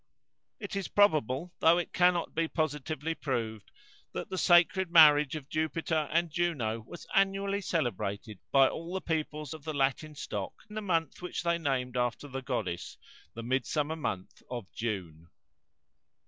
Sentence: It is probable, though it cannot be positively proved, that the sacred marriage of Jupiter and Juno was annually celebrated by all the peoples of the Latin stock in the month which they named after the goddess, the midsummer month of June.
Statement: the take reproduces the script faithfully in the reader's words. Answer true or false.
false